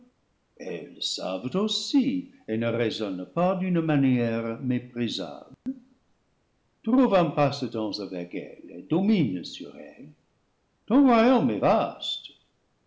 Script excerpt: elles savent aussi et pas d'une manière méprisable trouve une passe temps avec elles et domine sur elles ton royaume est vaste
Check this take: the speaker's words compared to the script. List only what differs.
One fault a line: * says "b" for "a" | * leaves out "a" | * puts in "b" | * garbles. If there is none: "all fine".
* puts in "ne raisonnent"
* says "un" for "une"